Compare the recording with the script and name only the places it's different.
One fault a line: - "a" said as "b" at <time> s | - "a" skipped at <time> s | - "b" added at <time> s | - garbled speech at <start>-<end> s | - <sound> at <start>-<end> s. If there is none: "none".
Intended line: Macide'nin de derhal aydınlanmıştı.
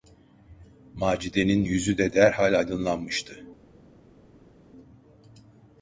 - "yüzü" added at 1.6 s